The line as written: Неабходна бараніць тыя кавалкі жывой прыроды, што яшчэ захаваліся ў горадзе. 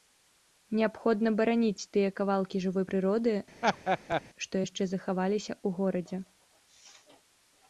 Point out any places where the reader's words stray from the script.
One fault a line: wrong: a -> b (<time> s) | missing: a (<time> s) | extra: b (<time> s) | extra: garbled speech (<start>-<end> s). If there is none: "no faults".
no faults